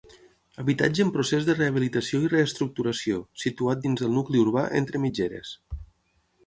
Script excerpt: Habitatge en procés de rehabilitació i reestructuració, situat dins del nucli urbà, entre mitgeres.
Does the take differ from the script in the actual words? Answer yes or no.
no